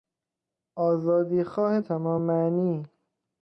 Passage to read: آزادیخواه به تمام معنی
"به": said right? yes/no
no